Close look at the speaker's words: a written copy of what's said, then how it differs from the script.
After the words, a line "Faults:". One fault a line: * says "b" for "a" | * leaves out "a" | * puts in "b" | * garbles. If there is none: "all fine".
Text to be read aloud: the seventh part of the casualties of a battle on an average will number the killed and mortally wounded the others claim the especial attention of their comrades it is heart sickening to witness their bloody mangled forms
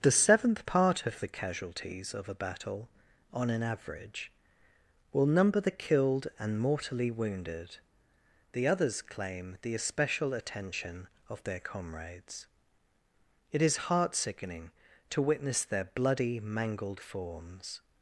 the seventh part of the casualties of a battle on an average will number the killed and mortally wounded the others claim the especial attention of their comrades it is heart sickening to witness their bloody mangled forms
Faults:
all fine